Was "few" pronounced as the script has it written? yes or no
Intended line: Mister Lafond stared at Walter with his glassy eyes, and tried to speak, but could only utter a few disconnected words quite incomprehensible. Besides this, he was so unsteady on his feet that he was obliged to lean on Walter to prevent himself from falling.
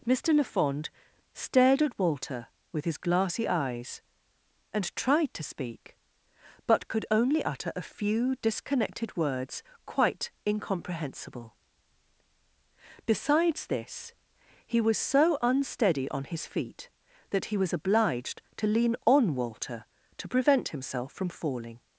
yes